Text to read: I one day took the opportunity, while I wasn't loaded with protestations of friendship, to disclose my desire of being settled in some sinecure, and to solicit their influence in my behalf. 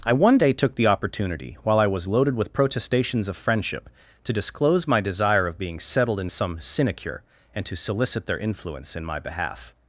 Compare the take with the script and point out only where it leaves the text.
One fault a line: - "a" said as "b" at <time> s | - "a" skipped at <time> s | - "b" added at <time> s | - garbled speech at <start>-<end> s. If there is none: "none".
- "wasn't" said as "was" at 1.9 s